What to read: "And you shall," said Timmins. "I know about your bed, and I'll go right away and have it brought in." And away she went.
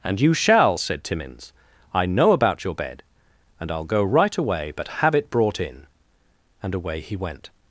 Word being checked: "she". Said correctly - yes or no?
no